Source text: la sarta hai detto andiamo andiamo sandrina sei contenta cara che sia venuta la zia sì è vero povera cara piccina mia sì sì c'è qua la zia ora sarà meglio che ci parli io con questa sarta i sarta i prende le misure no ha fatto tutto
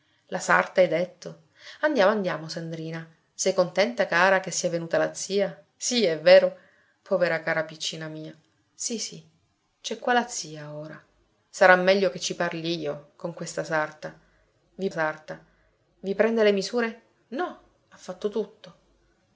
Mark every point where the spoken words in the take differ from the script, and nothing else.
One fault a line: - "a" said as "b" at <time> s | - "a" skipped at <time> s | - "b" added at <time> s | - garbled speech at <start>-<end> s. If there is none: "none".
none